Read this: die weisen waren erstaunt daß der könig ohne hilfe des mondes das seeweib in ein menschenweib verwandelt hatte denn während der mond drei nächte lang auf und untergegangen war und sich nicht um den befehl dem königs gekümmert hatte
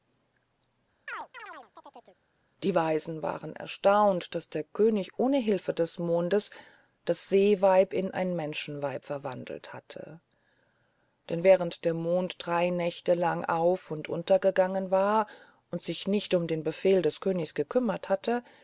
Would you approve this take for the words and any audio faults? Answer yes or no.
no